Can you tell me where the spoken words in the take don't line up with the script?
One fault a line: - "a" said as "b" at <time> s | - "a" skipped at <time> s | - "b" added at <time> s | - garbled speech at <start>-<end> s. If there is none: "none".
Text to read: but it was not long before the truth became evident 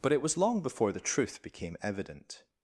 - "not" skipped at 0.4 s